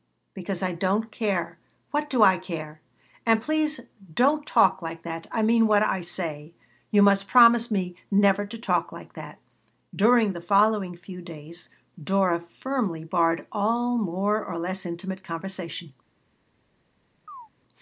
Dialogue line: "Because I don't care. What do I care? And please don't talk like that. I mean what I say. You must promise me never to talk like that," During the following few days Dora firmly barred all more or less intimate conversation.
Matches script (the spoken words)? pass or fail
pass